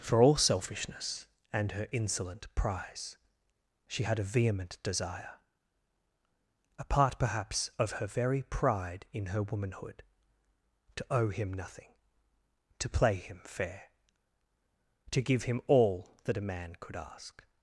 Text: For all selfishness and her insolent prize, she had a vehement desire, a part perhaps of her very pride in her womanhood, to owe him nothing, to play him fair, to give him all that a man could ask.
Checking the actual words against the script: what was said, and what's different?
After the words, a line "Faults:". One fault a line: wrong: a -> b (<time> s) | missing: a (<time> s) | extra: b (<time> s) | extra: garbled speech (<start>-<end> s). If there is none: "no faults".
For all selfishness and her insolent prize, she had a vehement desire, a part perhaps of her very pride in her womanhood, to owe him nothing, to play him fair, to give him all that a man could ask.
Faults:
no faults